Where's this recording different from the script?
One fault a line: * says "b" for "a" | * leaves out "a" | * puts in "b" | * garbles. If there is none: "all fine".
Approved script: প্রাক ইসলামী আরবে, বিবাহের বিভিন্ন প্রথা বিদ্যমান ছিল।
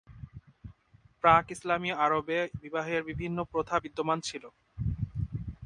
all fine